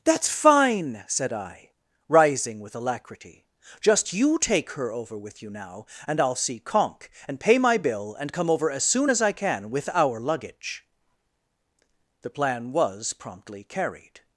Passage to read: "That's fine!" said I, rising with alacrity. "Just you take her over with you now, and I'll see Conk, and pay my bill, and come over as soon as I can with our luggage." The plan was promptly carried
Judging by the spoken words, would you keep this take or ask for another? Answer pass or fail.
pass